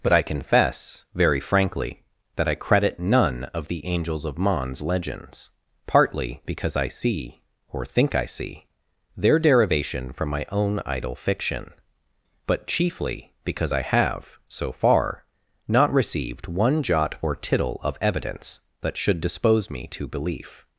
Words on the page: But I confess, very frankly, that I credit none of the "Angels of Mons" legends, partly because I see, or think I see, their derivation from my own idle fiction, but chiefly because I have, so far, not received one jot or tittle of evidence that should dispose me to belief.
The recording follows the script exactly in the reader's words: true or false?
true